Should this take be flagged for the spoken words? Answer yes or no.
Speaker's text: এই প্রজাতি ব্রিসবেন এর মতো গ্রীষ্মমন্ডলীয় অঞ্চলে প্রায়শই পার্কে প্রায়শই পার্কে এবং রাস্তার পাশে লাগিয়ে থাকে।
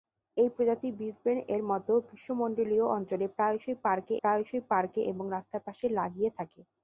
no